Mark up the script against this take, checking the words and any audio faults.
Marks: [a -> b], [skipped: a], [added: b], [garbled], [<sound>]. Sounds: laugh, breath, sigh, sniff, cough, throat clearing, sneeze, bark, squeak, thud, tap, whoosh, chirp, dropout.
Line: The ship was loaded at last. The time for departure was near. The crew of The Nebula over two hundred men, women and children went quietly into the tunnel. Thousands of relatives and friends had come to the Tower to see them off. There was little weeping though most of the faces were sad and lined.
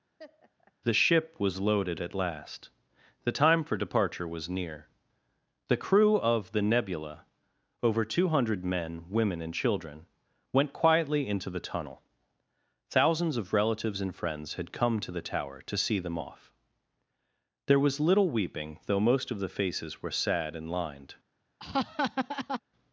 [laugh] The ship was loaded at last. The time for departure was near. The crew of The Nebula over two hundred men, women and children went quietly into the tunnel. Thousands of relatives and friends had come to the Tower to see them off. There was little weeping though most of the faces were sad and lined. [laugh]